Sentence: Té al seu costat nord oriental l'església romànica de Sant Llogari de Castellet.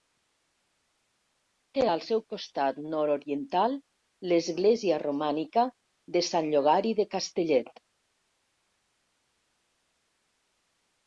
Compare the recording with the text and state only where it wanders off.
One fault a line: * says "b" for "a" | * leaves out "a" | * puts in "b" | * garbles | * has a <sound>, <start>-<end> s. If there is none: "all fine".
all fine